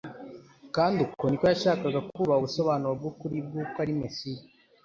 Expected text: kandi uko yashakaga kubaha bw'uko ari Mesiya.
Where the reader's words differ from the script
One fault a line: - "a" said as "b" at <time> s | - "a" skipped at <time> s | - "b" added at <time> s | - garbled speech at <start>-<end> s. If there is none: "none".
- "niko" added at 1.3 s
- "ubusobanuro bw'ukuri" added at 2.4 s